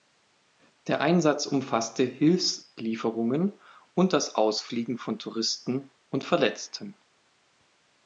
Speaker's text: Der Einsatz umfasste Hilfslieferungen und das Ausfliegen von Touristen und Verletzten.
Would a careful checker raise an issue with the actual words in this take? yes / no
no